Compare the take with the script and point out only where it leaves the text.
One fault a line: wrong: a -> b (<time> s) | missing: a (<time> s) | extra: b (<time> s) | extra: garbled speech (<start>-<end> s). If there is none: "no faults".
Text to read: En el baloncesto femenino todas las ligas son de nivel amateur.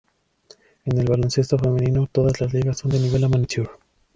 no faults